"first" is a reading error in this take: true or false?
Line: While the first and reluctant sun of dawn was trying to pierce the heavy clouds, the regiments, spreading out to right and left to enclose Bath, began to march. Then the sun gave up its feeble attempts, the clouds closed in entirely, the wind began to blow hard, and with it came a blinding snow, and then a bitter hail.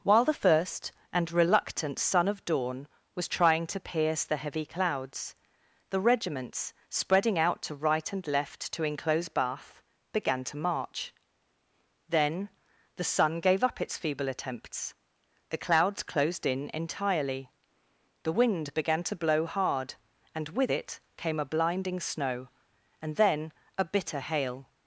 false